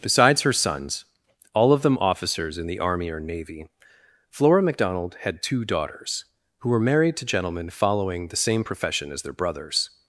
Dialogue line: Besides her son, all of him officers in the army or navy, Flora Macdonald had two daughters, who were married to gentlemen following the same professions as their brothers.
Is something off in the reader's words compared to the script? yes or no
yes